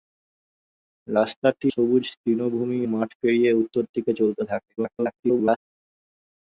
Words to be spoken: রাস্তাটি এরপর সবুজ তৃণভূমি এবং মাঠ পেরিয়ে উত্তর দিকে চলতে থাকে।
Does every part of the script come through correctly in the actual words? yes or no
no